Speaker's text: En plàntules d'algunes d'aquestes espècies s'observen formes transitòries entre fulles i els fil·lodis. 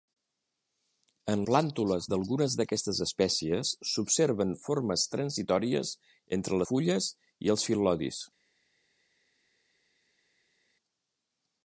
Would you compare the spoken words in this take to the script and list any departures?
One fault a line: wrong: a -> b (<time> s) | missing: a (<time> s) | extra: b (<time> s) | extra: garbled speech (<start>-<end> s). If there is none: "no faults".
no faults